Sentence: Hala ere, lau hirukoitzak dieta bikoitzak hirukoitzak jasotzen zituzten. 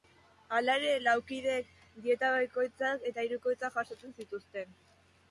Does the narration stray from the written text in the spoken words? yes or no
yes